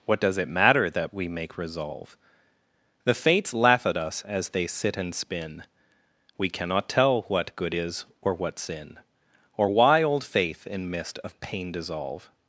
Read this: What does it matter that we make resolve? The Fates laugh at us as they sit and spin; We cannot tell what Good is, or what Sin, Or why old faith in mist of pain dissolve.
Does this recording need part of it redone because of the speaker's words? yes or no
no